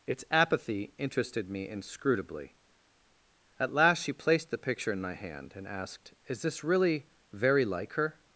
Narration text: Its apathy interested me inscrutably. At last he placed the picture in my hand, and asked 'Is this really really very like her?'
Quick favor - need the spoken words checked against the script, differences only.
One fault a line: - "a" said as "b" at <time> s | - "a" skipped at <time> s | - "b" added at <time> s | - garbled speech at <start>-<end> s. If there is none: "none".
- "he" said as "she" at 4.0 s
- "really" skipped at 7.1 s